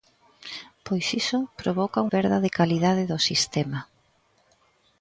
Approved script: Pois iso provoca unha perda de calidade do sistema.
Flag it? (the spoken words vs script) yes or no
yes